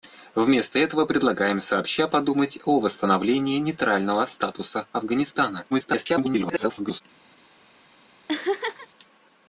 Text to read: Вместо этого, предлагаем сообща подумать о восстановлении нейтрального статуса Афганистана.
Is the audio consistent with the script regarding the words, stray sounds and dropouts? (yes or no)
no